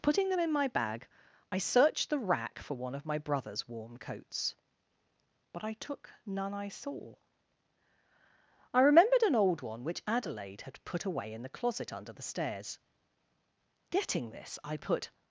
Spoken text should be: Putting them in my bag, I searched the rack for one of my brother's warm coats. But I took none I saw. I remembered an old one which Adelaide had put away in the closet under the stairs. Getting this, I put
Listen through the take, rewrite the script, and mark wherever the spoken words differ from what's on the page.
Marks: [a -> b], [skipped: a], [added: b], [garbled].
Putting them in my bag, I searched the rack for one of my brother's warm coats. But I took none I saw. I remembered an old one which Adelaide had put away in the closet under the stairs. Getting this, I put